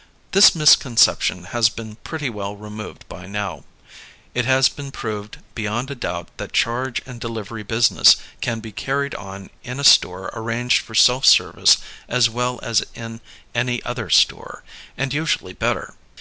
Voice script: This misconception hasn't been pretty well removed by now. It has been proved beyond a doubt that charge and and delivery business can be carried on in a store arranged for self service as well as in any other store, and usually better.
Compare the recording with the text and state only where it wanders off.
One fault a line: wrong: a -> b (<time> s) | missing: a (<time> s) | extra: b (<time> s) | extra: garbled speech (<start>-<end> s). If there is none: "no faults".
wrong: hasn't -> has (1.5 s)
missing: and (7.2 s)